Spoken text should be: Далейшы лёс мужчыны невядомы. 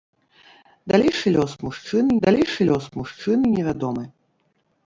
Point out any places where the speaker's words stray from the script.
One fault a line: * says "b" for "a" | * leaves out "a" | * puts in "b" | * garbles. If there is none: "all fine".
* puts in "далейшы лёс мужчыны"